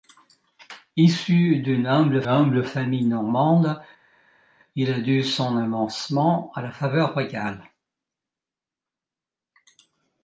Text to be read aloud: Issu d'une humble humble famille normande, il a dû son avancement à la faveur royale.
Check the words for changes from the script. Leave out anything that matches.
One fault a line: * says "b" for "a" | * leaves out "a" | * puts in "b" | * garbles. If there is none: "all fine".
all fine